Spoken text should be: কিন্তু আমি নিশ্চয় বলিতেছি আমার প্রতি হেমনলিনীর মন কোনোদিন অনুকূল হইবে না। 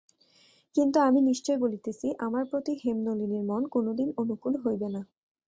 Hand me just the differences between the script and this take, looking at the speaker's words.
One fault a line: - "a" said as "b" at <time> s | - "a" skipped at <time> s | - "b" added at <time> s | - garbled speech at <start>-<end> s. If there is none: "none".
none